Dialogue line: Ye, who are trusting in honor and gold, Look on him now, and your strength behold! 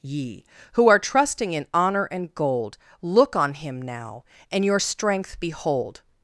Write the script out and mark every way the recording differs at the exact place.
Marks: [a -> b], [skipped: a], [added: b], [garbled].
Ye, who are trusting in honor and gold, Look on him now, and your strength behold!